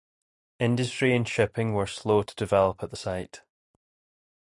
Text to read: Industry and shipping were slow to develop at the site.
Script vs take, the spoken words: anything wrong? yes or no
no